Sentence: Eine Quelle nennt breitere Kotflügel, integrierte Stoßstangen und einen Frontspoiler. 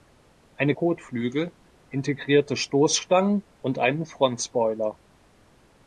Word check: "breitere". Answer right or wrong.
wrong